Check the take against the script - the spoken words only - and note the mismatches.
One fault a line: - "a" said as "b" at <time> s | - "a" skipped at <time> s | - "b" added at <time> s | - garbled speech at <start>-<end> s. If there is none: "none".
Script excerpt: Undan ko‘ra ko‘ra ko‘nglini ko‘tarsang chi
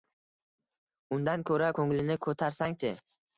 - "ko‘ra" skipped at 1.7 s